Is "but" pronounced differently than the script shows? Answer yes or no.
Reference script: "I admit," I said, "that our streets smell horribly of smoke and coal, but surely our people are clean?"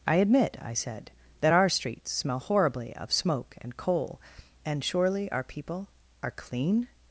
yes